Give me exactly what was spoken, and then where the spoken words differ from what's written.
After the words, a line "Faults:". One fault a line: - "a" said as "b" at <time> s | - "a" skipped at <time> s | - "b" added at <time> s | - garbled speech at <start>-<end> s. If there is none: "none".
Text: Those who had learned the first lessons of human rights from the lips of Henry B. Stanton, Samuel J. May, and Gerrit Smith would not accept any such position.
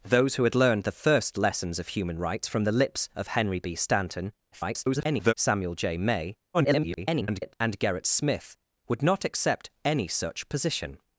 Those who had learned the first lessons of human rights from the lips of Henry B. Stanton, [garbled] Samuel J. May, [garbled] and Gerrit Smith would not accept any such position.
Faults:
- garbled speech at 4.5-5.3 s
- garbled speech at 6.5-7.5 s